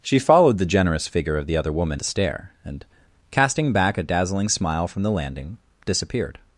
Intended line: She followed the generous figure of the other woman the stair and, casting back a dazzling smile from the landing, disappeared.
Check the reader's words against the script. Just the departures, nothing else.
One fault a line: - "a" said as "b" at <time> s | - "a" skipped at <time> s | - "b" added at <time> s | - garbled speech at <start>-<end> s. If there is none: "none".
none